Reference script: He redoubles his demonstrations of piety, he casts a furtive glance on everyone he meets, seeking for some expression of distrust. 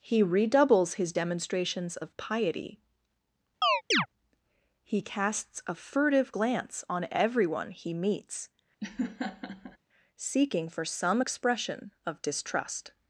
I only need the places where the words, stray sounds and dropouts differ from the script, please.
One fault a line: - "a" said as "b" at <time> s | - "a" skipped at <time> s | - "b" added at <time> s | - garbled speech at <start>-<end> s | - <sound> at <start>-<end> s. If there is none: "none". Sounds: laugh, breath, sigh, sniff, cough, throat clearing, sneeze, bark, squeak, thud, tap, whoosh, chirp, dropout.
- chirp at 3.6-4.1 s
- laugh at 8.8-9.8 s